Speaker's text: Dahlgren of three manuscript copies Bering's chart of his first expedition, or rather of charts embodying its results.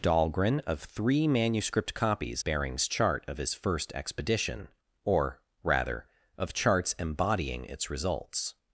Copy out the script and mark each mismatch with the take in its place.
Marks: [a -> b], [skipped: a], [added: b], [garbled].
Dahlgren of three manuscript copies Bering's chart of his first expedition, or rather of charts embodying its results.